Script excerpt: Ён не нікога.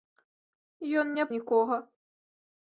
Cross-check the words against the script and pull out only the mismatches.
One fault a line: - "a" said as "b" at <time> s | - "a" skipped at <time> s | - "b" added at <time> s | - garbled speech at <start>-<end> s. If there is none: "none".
none